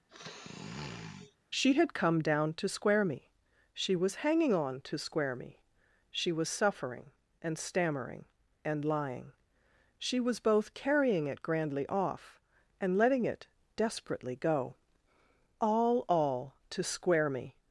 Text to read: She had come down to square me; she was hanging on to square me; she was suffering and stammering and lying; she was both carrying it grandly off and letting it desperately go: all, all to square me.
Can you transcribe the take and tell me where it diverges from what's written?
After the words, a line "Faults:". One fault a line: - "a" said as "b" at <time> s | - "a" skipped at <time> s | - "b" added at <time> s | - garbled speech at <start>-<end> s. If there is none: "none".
She had come down to square me; she was hanging on to square me; she was suffering and stammering and lying; she was both carrying it grandly off and letting it desperately go: all, all to square me.
Faults:
none